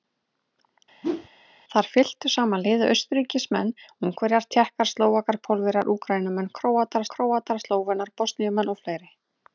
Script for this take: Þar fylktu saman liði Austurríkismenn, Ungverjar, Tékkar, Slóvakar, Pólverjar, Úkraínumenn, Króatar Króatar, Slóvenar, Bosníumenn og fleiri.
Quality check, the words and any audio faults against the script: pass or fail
fail